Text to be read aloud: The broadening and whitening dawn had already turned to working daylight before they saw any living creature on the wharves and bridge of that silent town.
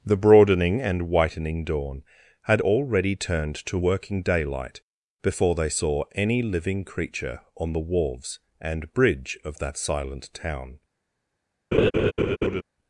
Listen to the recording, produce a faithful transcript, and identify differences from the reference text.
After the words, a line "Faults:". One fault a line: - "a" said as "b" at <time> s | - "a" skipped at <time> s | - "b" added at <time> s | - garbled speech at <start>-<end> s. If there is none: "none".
The broadening and whitening dawn had already turned to working daylight before they saw any living creature on the wharves and bridge of that silent town.
Faults:
none